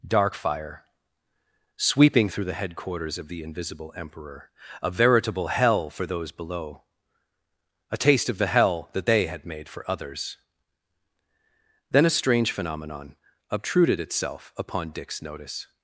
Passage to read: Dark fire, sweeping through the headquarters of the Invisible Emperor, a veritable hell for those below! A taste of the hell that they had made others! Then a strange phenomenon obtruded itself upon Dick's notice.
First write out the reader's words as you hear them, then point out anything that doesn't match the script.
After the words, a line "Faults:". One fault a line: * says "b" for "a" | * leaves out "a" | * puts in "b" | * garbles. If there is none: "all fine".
Dark fire, sweeping through the headquarters of the Invisible Emperor, a veritable hell for those below! A taste of the hell that they had made for others! Then a strange phenomenon obtruded itself upon Dick's notice.
Faults:
* puts in "for"